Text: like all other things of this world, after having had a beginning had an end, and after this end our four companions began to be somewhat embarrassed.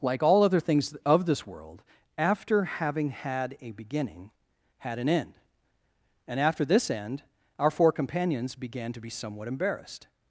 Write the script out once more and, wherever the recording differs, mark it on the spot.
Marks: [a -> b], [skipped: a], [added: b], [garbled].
like all other things of this world, after having had a beginning had an end, and after this end our four companions began to be somewhat embarrassed.